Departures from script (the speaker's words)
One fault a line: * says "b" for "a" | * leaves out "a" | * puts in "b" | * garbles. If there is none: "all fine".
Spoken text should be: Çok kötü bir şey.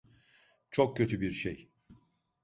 all fine